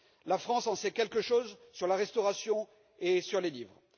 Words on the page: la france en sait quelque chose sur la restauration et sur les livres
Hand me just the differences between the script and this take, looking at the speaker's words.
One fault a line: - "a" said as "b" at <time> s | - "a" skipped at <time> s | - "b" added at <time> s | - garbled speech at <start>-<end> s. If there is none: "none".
none